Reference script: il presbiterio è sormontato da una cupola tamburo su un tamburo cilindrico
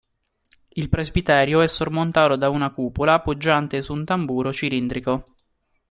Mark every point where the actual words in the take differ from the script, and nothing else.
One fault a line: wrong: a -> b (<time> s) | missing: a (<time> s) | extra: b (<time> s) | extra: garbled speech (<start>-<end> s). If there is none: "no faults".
wrong: tamburo -> poggiante (3.2 s)